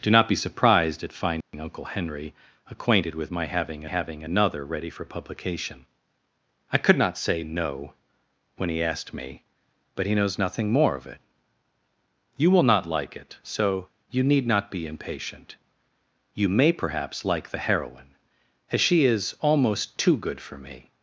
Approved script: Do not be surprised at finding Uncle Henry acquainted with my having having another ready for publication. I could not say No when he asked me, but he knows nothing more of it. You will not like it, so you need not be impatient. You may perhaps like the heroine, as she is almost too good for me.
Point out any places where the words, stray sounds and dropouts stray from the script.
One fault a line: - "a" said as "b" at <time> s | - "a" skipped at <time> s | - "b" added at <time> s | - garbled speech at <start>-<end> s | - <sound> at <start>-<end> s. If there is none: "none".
- dropout at 1.4-1.5 s